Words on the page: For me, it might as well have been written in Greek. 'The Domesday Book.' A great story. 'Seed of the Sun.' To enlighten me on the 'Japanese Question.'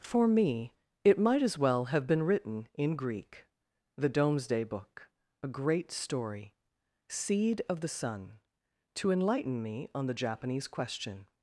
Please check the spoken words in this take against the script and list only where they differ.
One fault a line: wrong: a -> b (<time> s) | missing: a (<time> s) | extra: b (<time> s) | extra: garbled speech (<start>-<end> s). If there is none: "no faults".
no faults